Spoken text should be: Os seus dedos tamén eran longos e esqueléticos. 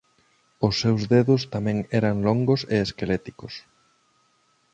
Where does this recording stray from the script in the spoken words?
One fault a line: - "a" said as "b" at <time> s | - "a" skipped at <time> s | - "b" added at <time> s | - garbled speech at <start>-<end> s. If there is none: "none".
none